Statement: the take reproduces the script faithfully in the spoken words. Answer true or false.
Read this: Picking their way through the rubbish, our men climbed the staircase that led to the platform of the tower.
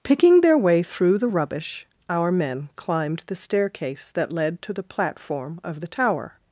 true